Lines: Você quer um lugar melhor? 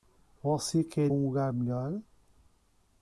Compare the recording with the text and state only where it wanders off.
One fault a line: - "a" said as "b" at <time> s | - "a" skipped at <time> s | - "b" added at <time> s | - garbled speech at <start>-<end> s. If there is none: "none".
none